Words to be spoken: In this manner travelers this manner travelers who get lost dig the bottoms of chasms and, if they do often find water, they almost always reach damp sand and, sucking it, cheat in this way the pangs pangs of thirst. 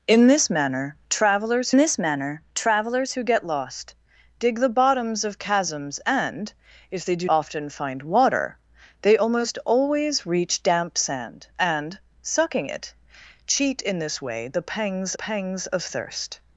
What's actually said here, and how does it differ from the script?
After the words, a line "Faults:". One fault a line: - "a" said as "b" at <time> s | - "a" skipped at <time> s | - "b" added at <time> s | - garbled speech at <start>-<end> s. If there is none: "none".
In this manner travelers this manner travelers who get lost dig the bottoms of chasms and, if they do often find water, they almost always reach damp sand and, sucking it, cheat in this way the pangs pangs of thirst.
Faults:
none